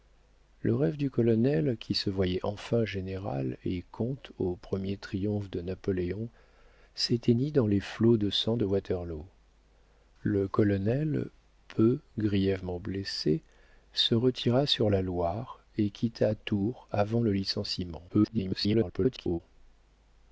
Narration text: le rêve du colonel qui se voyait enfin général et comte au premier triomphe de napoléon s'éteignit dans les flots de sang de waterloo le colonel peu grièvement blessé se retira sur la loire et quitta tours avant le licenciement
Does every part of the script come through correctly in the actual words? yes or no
no